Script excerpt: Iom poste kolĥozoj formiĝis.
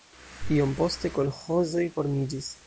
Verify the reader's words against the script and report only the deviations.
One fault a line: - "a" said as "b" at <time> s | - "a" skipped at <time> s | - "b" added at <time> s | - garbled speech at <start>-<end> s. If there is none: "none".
none